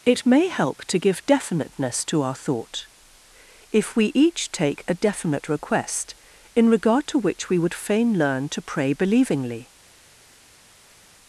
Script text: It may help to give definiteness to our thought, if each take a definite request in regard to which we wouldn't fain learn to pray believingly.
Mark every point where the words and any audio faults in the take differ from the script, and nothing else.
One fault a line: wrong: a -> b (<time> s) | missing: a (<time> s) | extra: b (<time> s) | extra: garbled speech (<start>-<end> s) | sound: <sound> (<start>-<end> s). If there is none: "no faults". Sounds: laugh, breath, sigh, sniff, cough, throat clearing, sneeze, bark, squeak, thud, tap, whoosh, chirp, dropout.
extra: we (4.0 s)
wrong: wouldn't -> would (7.6 s)